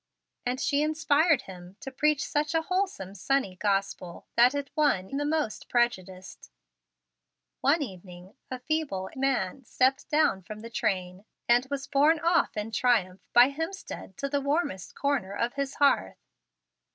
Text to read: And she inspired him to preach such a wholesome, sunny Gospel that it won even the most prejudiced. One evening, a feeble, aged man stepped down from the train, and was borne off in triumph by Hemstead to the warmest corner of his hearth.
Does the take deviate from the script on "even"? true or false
true